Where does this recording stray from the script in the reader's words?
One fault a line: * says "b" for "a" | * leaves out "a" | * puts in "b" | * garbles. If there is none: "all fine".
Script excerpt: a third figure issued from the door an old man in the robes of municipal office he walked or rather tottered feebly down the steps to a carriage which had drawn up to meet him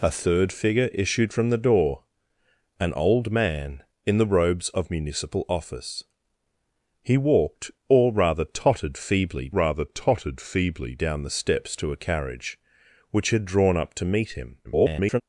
* puts in "rather tottered feebly"
* garbles